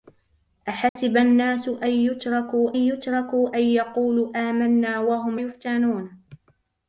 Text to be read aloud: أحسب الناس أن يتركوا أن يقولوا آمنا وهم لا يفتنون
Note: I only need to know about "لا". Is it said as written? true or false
false